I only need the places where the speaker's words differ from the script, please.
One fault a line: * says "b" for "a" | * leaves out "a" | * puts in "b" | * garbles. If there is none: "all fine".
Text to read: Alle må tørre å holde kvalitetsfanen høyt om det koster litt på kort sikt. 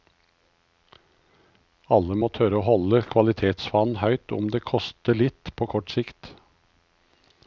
all fine